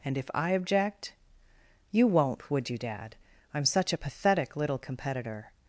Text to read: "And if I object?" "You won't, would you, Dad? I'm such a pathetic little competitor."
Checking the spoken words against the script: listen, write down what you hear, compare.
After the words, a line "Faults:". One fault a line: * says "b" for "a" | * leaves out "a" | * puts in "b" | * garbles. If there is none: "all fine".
"And if I object?" "You won't, would you, Dad? I'm such a pathetic little competitor."
Faults:
all fine